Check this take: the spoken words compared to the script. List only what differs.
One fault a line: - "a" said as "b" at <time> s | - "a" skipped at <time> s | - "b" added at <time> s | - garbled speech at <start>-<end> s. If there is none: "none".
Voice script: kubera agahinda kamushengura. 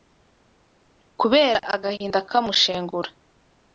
none